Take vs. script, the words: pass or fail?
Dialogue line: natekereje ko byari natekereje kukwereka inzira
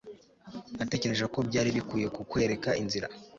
fail